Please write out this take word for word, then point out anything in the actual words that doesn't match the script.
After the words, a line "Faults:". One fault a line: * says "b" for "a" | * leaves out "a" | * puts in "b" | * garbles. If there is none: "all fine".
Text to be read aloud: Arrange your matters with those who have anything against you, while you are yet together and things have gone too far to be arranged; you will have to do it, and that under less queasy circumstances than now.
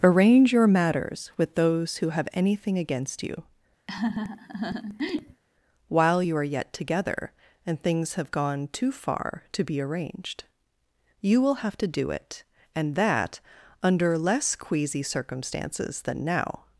Arrange your matters with those who have anything against you, while you are yet together and things have gone too far to be arranged; you will have to do it, and that under less queasy circumstances than now.
Faults:
all fine